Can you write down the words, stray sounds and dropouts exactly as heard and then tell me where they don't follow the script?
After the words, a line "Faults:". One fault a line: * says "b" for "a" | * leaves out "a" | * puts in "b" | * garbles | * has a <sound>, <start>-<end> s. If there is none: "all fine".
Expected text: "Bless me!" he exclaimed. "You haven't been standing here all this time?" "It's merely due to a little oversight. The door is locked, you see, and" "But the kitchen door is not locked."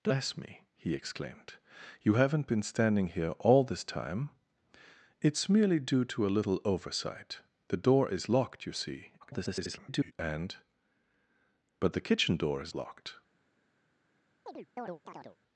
"Bless me!" he exclaimed. "You haven't been standing here all this time?" "It's merely due to a little oversight. The door is locked, you see, [garbled] and" "But the kitchen door is locked."
Faults:
* garbles
* leaves out "not"
* has a chirp, 14.5-15.4 s